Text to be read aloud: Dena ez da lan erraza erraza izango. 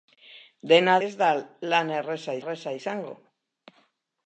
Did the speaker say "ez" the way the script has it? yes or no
yes